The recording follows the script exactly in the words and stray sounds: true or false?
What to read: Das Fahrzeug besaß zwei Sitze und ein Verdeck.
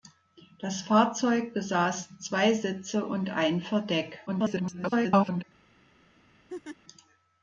false